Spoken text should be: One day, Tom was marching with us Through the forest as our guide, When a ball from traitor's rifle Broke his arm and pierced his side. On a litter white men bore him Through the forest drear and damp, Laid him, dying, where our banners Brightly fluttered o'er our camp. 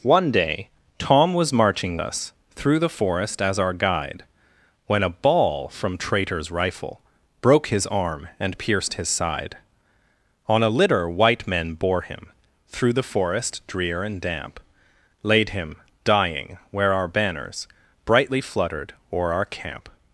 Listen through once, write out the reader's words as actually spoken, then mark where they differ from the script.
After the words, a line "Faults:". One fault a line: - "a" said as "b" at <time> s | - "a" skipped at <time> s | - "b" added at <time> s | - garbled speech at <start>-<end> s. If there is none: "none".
One day, Tom was marching us Through the forest as our guide, When a ball from traitor's rifle Broke his arm and pierced his side. On a litter white men bore him Through the forest drear and damp, Laid him, dying, where our banners Brightly fluttered o'er our camp.
Faults:
- "with" skipped at 2.0 s